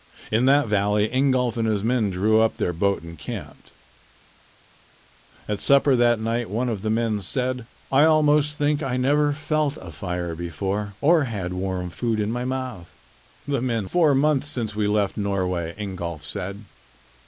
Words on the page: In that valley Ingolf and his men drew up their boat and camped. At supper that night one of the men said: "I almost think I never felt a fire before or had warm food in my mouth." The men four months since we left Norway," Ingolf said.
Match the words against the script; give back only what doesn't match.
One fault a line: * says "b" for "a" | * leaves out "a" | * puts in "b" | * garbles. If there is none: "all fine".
all fine